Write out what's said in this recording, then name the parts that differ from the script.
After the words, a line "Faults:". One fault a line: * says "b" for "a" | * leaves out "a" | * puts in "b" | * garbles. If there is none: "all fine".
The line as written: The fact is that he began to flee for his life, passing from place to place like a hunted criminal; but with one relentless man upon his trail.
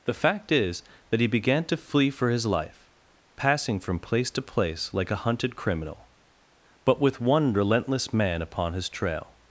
The fact is that he began to flee for his life, passing from place to place like a hunted criminal; but with one relentless man upon his trail.
Faults:
all fine